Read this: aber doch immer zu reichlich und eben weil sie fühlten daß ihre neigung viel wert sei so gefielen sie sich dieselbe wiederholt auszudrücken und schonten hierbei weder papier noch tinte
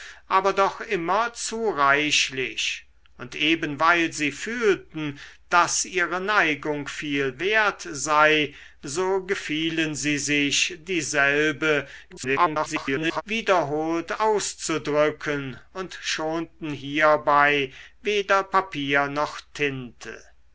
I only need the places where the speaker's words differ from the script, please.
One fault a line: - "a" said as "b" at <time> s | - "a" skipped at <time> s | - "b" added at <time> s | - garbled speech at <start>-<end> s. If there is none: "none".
- garbled speech at 12.1-13.2 s